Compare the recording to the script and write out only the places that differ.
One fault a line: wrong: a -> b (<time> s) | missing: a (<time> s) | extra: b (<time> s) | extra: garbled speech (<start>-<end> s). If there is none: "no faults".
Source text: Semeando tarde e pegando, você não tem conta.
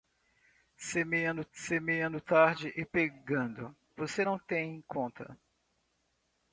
extra: semeando (1.5 s)